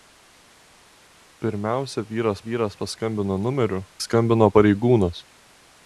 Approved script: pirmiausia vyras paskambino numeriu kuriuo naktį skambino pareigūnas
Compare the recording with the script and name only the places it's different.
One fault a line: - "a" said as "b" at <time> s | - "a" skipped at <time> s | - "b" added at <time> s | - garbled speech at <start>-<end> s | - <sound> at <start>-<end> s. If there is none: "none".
- "vyras" added at 2.4 s
- "kuriuo naktį" skipped at 3.8 s